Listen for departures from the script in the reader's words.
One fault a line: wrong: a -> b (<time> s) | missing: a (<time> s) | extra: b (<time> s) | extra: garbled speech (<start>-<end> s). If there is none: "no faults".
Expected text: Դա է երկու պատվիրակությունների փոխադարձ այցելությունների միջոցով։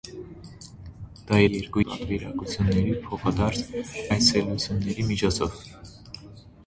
no faults